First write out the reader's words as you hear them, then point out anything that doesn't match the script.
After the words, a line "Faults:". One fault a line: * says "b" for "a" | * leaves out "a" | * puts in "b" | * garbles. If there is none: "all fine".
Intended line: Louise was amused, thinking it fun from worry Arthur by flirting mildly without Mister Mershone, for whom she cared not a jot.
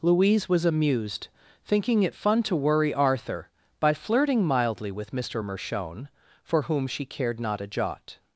Louise was amused, thinking it fun to worry Arthur by flirting mildly with Mister Mershone, for whom she cared not a jot.
Faults:
* says "to" for "from"
* says "with" for "without"